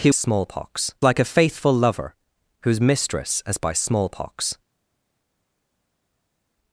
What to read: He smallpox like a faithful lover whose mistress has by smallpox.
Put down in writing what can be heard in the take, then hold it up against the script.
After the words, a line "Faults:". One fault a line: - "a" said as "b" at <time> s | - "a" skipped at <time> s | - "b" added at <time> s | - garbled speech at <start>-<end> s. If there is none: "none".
He smallpox like a faithful lover whose mistress has by smallpox.
Faults:
none